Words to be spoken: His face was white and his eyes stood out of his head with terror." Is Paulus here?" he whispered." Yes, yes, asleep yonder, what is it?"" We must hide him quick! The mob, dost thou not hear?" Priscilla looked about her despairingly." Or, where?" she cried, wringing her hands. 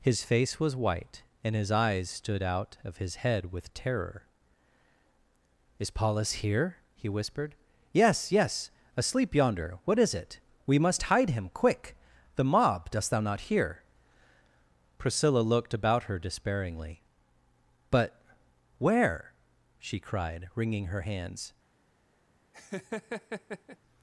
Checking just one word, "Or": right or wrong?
wrong